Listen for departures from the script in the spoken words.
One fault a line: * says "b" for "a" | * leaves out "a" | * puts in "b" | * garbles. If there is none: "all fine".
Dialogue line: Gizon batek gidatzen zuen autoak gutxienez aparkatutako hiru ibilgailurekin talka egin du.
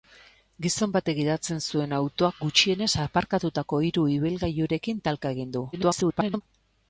* garbles